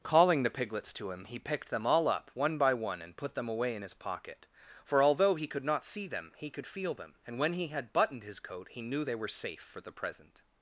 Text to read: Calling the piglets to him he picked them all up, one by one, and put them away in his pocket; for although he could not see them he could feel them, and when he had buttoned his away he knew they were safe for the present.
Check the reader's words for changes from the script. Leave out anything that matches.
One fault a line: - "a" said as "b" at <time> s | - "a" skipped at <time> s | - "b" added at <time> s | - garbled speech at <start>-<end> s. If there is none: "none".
- "away" said as "coat" at 8.4 s